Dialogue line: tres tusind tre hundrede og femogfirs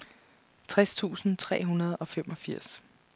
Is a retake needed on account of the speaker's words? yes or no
no